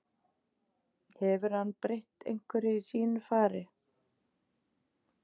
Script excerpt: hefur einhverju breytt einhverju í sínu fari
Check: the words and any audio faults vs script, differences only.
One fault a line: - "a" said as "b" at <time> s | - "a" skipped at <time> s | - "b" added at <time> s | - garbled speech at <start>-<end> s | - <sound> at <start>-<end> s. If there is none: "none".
- "einhverju" said as "hann" at 1.6 s